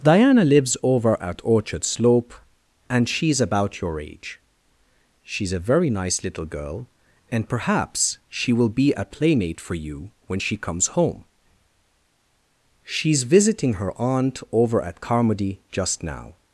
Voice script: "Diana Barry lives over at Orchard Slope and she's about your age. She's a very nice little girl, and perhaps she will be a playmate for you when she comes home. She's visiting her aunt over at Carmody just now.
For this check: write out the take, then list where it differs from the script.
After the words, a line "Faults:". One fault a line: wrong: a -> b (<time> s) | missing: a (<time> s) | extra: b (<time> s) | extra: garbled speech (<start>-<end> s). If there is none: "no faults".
"Diana lives over at Orchard Slope and she's about your age. She's a very nice little girl, and perhaps she will be a playmate for you when she comes home. She's visiting her aunt over at Carmody just now.
Faults:
missing: Barry (0.4 s)